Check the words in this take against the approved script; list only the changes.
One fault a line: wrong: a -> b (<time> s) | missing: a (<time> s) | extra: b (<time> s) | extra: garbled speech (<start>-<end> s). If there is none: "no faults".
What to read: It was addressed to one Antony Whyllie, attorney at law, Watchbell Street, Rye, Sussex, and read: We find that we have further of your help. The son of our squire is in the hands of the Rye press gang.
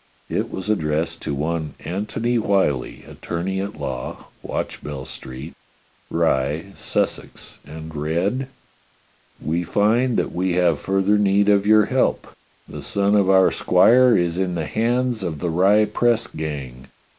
extra: need (11.2 s)